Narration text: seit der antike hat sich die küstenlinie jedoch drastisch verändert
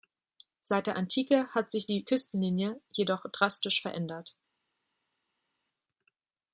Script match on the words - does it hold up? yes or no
yes